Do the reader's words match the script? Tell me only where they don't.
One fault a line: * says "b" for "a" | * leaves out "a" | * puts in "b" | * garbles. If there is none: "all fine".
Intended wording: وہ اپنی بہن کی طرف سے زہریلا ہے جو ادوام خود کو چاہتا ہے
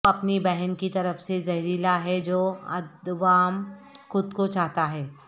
all fine